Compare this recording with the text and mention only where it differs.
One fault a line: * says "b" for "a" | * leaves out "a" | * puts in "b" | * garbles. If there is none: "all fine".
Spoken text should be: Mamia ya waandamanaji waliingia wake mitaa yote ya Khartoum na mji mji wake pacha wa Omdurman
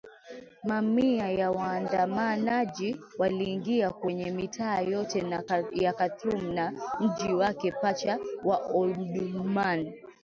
* says "kwenye" for "wake"
* leaves out "mji"